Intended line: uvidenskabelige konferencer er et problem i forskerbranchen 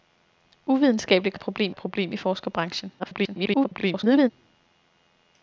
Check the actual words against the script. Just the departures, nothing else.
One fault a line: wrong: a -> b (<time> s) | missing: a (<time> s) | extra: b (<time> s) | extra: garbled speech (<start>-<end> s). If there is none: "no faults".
missing: konferencer (1.4 s)
extra: problem (1.7 s)
extra: garbled speech (3.0-4.3 s)